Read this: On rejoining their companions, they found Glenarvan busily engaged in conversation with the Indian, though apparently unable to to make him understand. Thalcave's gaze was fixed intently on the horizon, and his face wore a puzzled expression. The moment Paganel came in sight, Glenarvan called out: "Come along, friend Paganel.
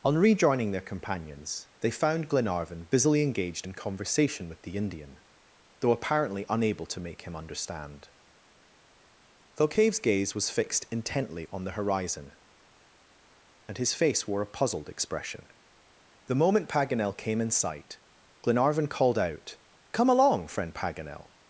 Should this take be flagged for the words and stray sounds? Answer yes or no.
yes